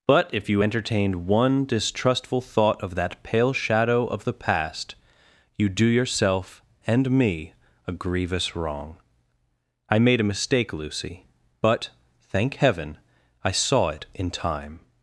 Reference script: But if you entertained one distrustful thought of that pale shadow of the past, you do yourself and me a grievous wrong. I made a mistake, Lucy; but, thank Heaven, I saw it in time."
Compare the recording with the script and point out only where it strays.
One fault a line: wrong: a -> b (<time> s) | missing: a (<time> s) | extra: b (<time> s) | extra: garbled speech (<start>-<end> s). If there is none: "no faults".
no faults